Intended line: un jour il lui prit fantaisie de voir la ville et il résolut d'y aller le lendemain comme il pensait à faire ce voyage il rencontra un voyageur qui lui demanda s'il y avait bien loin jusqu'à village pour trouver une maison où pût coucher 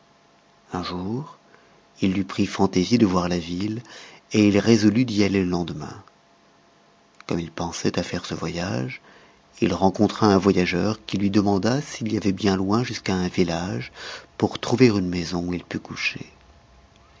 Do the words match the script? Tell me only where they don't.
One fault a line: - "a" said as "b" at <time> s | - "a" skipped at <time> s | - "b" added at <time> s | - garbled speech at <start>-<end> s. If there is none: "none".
- "un" added at 13.1 s
- "il" added at 15.5 s